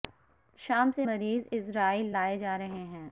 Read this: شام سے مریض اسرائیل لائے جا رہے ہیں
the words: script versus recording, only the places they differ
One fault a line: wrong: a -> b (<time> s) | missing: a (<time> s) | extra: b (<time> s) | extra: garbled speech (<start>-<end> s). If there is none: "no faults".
no faults